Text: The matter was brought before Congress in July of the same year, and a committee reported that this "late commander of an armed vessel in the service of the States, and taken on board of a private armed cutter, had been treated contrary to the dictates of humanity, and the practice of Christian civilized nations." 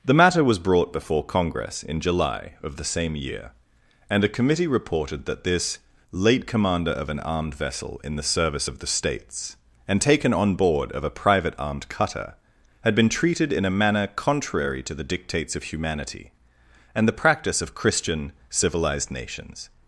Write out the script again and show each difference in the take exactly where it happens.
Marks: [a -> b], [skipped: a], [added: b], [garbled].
The matter was brought before Congress in July of the same year, and a committee reported that this "late commander of an armed vessel in the service of the States, and taken on board of a private armed cutter, had been treated [added: in a manner] contrary to the dictates of humanity, and the practice of Christian civilized nations."